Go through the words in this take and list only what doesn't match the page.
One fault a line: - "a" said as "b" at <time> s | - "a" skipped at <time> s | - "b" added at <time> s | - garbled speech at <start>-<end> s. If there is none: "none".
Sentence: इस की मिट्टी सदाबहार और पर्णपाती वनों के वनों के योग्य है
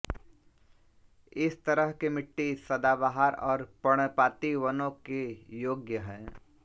- "तरह" added at 1.6 s
- "वनों के" skipped at 5.2 s